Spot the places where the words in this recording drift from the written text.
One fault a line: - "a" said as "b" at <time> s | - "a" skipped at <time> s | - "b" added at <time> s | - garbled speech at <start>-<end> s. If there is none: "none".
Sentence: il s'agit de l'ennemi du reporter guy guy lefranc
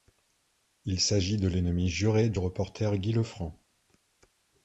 - "juré" added at 1.9 s
- "guy" skipped at 3.1 s